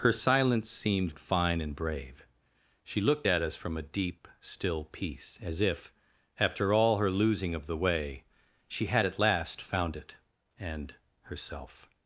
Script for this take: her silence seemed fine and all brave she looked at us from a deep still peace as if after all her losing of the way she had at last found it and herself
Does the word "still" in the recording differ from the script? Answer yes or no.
no